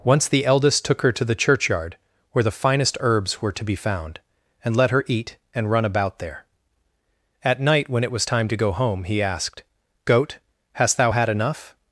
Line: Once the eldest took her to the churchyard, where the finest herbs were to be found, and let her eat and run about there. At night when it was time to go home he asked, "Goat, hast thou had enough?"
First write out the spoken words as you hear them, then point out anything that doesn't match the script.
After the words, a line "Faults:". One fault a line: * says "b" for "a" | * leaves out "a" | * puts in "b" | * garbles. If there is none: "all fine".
Once the eldest took her to the churchyard, where the finest herbs were to be found, and let her eat and run about there. At night when it was time to go home he asked, "Goat, hast thou had enough?"
Faults:
all fine